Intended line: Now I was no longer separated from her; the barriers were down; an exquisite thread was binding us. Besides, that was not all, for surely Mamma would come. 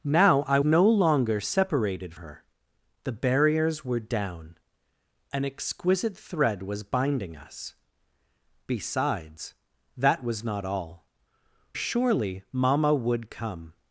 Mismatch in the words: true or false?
true